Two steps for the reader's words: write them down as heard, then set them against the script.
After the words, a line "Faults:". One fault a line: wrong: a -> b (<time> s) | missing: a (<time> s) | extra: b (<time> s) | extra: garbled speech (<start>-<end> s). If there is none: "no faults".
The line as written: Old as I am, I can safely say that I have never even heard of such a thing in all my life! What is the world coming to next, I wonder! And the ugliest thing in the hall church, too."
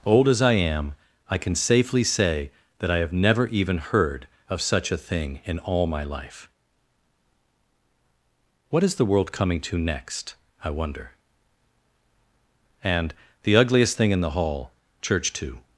Old as I am, I can safely say that I have never even heard of such a thing in all my life! What is the world coming to next, I wonder! And the ugliest thing in the hall church, too."
Faults:
no faults